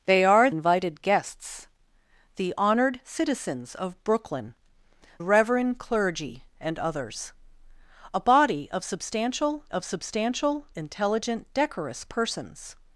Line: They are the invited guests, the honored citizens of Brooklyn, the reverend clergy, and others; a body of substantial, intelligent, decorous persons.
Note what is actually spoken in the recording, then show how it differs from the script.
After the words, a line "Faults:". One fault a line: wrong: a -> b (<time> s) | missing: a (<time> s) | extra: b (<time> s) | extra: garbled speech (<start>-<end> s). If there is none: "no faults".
They are invited guests, the honored citizens of Brooklyn, reverend clergy, and others; a body of substantial of substantial, intelligent, decorous persons.
Faults:
missing: the (0.5 s)
missing: the (4.5 s)
extra: of substantial (9.7 s)